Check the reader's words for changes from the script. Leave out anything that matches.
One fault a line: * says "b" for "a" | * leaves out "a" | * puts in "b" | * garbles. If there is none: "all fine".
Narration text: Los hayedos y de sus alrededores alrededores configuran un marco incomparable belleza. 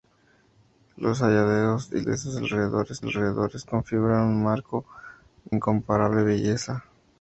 all fine